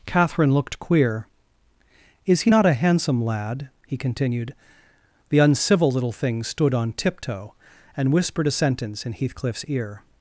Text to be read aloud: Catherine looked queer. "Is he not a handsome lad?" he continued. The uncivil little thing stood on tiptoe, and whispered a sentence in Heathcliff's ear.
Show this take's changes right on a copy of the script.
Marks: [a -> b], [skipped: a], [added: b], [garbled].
Catherine looked queer. "Is he not a handsome lad?" he continued. The uncivil little thing stood on tiptoe, and whispered a sentence in Heathcliff's ear.